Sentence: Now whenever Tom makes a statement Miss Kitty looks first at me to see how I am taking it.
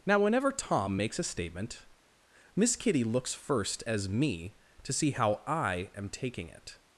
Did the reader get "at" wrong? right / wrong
wrong